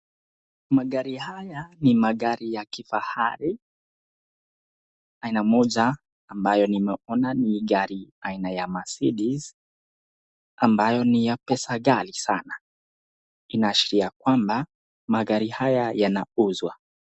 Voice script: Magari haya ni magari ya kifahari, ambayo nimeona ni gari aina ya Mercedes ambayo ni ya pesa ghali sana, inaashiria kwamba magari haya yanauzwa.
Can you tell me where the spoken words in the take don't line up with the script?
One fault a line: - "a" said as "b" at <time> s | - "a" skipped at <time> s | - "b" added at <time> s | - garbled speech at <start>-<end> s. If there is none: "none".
- "aina moja" added at 5.2 s